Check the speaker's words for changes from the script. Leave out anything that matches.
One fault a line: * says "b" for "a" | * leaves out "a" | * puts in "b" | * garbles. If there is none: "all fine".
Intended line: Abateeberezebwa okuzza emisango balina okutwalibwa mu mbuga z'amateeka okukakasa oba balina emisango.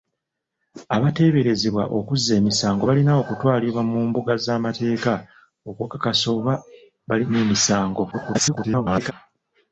* garbles